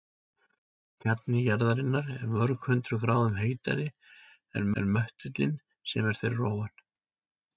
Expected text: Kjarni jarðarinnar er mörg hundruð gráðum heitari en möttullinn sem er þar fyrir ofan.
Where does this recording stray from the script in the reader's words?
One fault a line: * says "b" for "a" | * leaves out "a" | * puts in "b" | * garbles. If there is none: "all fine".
* puts in "en"
* leaves out "þar"